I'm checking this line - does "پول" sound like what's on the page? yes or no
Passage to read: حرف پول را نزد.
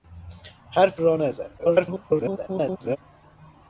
no